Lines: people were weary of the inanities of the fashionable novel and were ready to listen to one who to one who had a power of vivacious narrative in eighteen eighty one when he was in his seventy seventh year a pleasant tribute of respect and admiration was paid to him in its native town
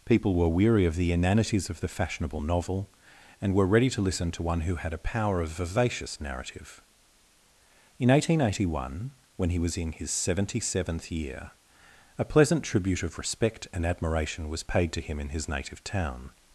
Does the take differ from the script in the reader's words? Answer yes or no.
yes